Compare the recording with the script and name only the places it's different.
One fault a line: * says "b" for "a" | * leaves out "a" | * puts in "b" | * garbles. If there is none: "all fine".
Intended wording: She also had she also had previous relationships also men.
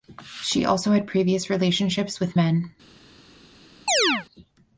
* leaves out "she also had"
* says "with" for "also"